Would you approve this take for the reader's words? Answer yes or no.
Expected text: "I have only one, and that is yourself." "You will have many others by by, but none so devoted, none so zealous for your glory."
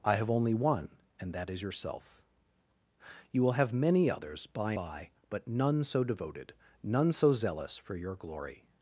yes